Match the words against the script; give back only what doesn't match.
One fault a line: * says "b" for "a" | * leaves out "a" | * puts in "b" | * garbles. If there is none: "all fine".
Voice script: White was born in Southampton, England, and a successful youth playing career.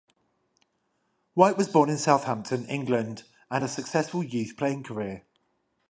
all fine